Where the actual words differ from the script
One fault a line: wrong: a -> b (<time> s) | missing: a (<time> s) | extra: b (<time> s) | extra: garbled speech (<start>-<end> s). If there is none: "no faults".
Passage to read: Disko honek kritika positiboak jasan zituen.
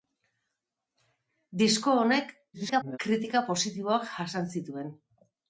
extra: garbled speech (2.5-3.0 s)